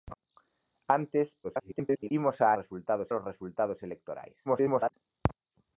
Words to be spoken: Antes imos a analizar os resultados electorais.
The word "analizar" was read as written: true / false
false